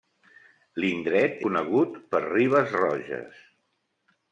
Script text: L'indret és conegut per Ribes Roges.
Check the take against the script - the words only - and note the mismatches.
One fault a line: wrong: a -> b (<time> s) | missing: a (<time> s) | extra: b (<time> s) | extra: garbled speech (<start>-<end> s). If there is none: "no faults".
missing: és (1.4 s)